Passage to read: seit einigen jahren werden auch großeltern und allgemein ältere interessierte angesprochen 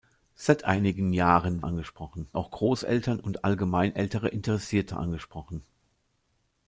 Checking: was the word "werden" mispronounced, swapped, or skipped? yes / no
yes